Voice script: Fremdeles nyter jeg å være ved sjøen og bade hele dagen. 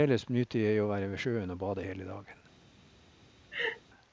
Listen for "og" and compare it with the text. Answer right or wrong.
right